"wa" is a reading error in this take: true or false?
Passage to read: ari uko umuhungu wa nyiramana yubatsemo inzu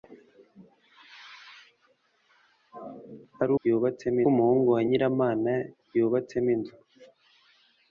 false